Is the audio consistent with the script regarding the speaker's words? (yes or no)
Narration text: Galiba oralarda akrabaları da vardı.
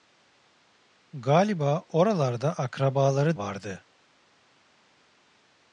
no